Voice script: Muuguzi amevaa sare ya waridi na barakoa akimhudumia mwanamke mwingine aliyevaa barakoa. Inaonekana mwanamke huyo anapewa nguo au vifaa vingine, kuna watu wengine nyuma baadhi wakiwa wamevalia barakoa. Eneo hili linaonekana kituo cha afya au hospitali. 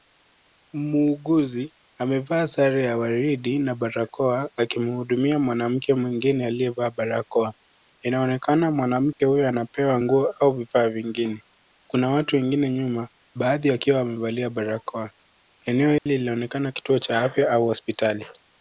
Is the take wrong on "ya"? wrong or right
right